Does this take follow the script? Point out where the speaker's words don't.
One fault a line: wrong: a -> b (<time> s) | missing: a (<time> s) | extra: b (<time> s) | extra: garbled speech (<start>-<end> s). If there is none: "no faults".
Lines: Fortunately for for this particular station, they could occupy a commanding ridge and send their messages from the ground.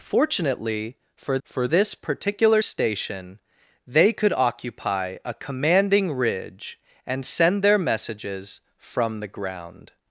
no faults